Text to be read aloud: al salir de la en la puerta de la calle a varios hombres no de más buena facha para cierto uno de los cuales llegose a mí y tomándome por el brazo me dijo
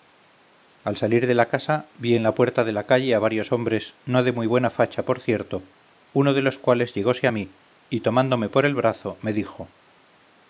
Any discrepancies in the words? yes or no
yes